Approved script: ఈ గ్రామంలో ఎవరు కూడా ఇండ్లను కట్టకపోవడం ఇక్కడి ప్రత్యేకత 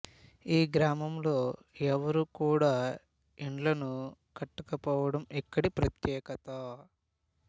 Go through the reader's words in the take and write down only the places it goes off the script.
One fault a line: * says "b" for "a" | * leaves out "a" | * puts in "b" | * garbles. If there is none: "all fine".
all fine